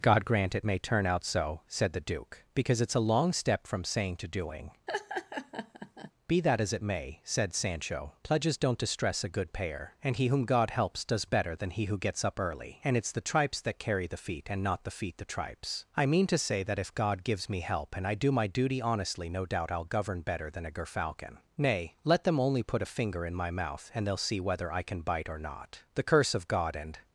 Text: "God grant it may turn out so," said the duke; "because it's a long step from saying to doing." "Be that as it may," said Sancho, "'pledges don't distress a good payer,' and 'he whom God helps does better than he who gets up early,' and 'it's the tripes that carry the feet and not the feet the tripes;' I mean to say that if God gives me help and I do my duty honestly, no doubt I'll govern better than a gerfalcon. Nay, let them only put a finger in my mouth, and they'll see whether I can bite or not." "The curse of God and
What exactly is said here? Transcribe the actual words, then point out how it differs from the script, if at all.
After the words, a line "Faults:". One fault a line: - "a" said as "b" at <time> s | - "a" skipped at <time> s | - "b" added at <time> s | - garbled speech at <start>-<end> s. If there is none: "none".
"God grant it may turn out so," said the duke; "because it's a long step from saying to doing." "Be that as it may," said Sancho, "'pledges don't distress a good payer,' and 'he whom God helps does better than he who gets up early,' and 'it's the tripes that carry the feet and not the feet the tripes;' I mean to say that if God gives me help and I do my duty honestly, no doubt I'll govern better than a gerfalcon. Nay, let them only put a finger in my mouth, and they'll see whether I can bite or not." "The curse of God and
Faults:
none